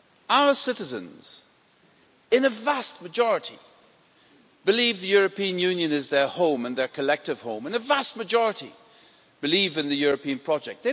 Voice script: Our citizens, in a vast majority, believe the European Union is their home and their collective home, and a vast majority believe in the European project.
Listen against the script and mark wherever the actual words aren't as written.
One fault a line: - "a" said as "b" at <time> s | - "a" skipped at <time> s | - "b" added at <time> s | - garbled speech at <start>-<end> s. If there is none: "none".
none